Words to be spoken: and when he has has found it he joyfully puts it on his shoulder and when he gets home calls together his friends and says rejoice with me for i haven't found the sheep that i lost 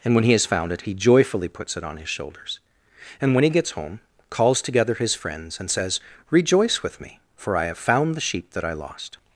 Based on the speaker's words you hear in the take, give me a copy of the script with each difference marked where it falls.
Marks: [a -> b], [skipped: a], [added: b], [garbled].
and when he has [skipped: has] found it he joyfully puts it on his [shoulder -> shoulders] and when he gets home calls together his friends and says rejoice with me for i [haven't -> have] found the sheep that i lost